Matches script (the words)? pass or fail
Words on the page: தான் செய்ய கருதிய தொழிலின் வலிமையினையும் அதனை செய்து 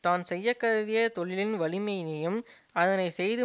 pass